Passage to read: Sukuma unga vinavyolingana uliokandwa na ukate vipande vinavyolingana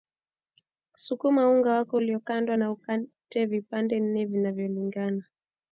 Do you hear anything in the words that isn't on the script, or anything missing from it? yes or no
yes